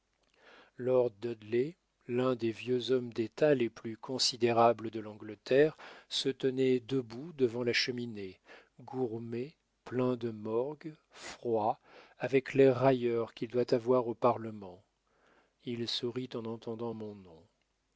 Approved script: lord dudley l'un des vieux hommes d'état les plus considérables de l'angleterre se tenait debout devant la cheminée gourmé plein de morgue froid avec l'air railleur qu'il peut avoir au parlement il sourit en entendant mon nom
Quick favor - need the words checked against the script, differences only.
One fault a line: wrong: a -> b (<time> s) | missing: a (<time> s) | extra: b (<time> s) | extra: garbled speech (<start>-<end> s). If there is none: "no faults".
wrong: peut -> doit (13.5 s)